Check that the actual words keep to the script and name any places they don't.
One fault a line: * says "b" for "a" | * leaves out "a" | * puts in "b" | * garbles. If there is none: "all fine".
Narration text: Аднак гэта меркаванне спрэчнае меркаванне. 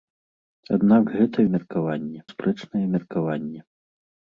all fine